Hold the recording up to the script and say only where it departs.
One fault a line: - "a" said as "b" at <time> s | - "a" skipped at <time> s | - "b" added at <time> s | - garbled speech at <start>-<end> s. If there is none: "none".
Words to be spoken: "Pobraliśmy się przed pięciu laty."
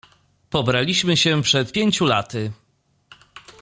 none